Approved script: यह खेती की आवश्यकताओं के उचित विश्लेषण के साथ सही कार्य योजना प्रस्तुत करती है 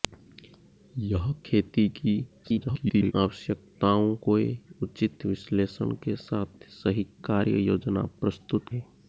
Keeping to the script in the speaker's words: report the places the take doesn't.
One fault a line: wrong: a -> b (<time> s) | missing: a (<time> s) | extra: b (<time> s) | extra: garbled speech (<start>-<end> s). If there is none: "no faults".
extra: garbled speech (2.4-3.1 s)
missing: करती (8.7 s)